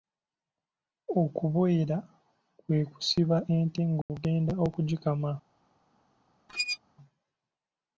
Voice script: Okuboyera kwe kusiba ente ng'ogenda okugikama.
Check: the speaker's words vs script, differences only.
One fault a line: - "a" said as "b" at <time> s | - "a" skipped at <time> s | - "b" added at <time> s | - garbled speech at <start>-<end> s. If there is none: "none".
none